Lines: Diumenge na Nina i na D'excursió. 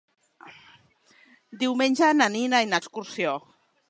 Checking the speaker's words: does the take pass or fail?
pass